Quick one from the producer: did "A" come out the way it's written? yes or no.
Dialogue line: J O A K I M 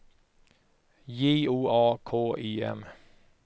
yes